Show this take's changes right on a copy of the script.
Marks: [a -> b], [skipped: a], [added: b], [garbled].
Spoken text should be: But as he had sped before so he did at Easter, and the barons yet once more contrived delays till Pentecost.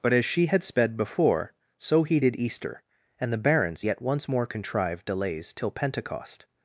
But as [he -> she] had sped before so he did [skipped: at] Easter, and the barons yet once more contrived delays till Pentecost.